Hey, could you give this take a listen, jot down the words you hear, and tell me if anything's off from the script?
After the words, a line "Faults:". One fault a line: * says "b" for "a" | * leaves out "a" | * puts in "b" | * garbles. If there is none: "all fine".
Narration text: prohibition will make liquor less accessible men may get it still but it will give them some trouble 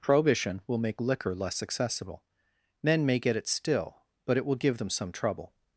prohibition will make liquor less accessible men may get it still but it will give them some trouble
Faults:
all fine